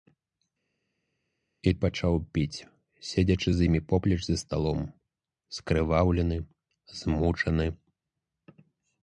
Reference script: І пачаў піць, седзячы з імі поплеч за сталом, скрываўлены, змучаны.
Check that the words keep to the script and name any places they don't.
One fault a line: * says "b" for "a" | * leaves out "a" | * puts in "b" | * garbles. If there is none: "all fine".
all fine